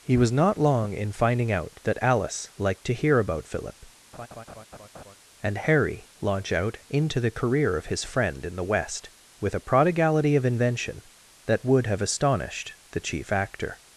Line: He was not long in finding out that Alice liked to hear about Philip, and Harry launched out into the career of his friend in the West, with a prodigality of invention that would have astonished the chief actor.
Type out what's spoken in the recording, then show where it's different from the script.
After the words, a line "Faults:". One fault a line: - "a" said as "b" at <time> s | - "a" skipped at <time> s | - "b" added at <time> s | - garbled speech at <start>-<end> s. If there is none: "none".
He was not long in finding out that Alice liked to hear about Philip, and Harry launch out into the career of his friend in the West, with a prodigality of invention that would have astonished the chief actor.
Faults:
- "launched" said as "launch" at 6.2 s